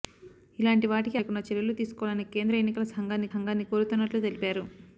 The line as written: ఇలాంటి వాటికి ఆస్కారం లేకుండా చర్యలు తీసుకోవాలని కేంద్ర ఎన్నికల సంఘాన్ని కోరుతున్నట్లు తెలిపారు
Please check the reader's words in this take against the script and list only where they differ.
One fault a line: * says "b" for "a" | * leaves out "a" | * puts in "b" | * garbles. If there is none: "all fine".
* leaves out "ఆస్కారం"
* puts in "సంఘాన్ని"